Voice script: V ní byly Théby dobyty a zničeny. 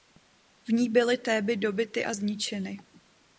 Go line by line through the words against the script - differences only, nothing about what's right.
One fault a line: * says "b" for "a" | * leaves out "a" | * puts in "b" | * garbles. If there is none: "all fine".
all fine